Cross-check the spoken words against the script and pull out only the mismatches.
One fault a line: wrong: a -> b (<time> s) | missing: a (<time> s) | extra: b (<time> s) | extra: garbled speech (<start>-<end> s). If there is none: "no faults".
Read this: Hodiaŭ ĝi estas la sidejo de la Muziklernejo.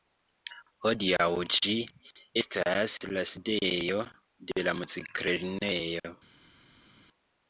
no faults